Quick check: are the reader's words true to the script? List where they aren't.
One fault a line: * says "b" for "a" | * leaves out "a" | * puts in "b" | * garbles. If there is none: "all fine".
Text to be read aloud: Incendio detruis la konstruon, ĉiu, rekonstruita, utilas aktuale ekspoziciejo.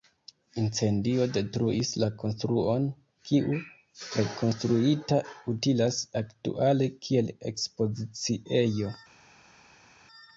* says "kiu" for "ĉiu"
* puts in "kiel"